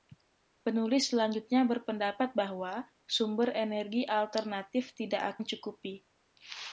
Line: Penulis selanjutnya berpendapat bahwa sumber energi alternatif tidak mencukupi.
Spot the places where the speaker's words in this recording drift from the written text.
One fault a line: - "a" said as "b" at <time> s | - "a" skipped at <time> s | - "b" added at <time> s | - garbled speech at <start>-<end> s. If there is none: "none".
none